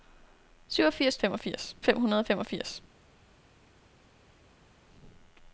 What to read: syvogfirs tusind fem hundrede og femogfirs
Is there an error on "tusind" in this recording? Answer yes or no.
yes